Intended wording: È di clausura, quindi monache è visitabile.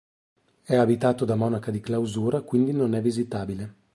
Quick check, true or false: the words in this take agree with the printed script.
false